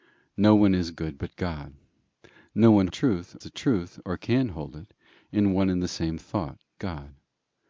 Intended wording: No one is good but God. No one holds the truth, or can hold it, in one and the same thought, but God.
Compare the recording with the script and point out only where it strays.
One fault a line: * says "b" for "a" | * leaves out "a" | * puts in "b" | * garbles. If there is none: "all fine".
* says "truth" for "holds"
* leaves out "but"